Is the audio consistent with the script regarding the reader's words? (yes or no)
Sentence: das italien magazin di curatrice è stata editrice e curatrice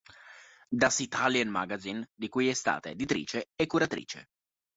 no